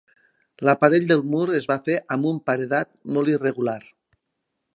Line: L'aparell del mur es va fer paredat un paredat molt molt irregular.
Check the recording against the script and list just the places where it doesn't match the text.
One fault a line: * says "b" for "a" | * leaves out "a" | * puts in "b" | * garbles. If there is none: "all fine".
* says "amb" for "paredat"
* leaves out "molt"